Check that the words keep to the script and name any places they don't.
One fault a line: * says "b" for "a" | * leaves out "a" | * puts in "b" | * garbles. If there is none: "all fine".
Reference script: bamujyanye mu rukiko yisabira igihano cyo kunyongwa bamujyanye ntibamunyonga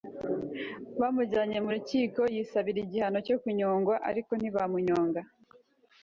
* says "ariko" for "bamujyanye"